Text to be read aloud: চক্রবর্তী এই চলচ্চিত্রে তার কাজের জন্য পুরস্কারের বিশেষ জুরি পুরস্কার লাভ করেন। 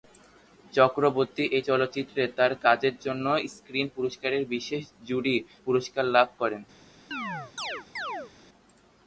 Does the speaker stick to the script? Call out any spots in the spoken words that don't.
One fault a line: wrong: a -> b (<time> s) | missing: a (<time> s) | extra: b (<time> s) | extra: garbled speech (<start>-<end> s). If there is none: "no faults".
extra: স্ক্রিন (3.5 s)